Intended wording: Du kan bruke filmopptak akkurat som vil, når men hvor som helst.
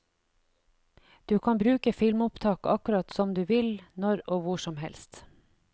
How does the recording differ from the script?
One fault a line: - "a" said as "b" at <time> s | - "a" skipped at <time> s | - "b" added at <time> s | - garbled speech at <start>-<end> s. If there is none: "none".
- "du" added at 3.3 s
- "men" said as "og" at 4.3 s